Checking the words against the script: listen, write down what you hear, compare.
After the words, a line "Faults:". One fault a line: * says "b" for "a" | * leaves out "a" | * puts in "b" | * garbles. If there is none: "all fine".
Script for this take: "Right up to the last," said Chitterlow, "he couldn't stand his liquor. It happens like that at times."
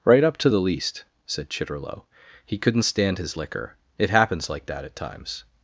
"Right up to the least," said Chitterlow, "he couldn't stand his liquor. It happens like that at times."
Faults:
* says "least" for "last"